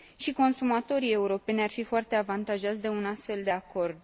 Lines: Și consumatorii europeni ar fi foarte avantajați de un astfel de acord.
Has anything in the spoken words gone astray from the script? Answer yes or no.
no